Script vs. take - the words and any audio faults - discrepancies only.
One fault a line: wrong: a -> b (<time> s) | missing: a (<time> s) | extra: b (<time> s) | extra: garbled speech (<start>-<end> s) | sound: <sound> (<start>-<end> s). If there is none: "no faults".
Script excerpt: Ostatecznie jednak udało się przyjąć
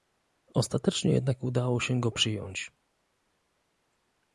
extra: go (2.0 s)